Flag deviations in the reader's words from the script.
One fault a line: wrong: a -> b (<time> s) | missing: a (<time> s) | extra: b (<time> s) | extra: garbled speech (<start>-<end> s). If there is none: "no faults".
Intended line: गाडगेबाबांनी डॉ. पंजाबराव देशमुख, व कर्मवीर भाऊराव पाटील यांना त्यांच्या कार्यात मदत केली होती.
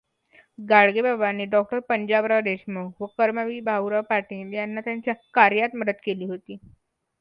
no faults